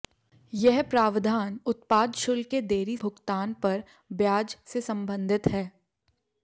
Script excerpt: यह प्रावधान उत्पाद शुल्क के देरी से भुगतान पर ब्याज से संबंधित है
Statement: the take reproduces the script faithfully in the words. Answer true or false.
false